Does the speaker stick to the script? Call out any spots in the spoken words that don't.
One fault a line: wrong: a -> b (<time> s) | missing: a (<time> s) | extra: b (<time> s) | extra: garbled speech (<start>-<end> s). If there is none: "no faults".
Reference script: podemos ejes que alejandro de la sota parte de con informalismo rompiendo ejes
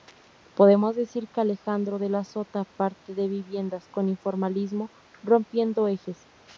wrong: ejes -> decir (0.9 s)
extra: viviendas (3.3 s)